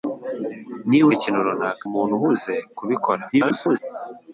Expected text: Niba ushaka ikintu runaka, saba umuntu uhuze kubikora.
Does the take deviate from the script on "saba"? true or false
true